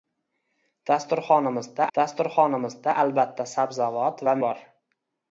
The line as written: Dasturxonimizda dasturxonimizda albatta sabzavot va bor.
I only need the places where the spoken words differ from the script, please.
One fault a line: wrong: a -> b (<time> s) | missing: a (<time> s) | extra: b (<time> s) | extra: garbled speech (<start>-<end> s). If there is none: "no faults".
no faults